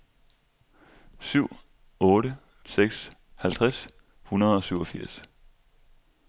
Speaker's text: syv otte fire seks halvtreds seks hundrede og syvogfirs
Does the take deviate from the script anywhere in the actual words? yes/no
yes